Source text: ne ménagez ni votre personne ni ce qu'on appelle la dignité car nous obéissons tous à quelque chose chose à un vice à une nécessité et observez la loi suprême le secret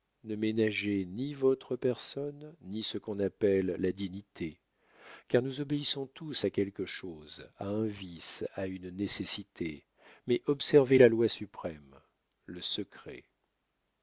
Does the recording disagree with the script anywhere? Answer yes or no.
yes